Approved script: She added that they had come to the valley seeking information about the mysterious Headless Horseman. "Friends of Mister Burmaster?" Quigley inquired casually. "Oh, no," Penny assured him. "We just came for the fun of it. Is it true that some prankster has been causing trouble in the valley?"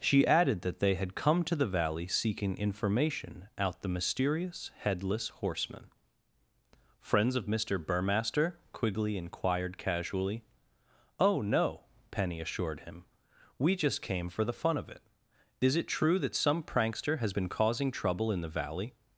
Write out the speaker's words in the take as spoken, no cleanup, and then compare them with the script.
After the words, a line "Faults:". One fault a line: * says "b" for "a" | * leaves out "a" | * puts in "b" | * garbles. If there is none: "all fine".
She added that they had come to the valley seeking information out the mysterious Headless Horseman. "Friends of Mister Burmaster?" Quigley inquired casually. "Oh, no," Penny assured him. "We just came for the fun of it. Is it true that some prankster has been causing trouble in the valley?"
Faults:
* says "out" for "about"